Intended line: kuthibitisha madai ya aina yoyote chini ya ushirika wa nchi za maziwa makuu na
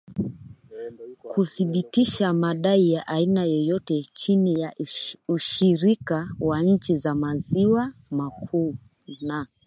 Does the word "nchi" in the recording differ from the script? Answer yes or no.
no